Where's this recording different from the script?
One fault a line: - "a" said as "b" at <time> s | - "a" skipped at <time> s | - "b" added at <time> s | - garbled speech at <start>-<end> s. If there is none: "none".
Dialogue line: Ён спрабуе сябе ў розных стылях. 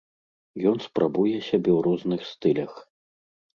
none